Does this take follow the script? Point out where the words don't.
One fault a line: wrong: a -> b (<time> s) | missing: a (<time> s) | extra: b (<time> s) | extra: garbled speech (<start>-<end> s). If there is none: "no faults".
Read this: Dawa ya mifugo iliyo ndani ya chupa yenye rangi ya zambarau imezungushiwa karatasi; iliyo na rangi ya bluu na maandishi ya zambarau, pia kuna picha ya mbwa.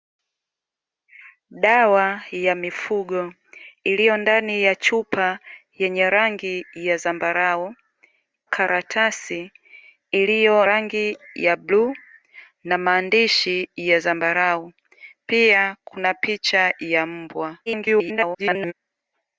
missing: imezungushiwa (7.8 s)
missing: na (10.7 s)
extra: garbled speech (17.7-18.7 s)